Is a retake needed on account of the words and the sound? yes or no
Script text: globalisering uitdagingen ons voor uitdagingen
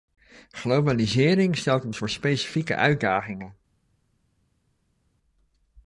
yes